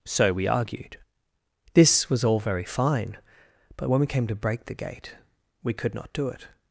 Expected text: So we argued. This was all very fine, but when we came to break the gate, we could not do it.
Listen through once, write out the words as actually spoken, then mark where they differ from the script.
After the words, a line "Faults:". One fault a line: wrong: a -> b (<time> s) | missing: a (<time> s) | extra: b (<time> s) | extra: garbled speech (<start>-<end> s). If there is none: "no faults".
So we argued. This was all very fine, but when we came to break the gate, we could not do it.
Faults:
no faults